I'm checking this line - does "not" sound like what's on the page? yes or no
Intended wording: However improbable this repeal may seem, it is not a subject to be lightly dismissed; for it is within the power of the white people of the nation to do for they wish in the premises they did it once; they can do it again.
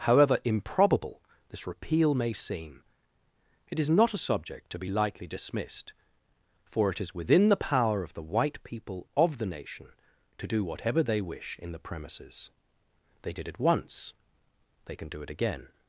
yes